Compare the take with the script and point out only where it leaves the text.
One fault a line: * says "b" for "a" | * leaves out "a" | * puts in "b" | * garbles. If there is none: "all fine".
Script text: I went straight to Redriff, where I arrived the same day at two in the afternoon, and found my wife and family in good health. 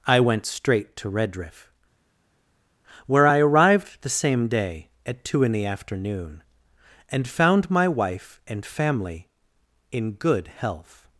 all fine